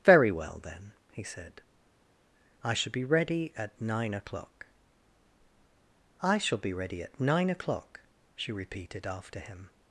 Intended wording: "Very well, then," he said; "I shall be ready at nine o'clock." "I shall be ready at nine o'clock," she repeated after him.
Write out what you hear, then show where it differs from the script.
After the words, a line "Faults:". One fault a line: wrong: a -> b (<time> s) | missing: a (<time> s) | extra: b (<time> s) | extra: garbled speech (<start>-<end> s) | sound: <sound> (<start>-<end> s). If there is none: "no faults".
"Very well, then," he said; "I shall be ready at nine o'clock." "I shall be ready at nine o'clock," she repeated after him.
Faults:
no faults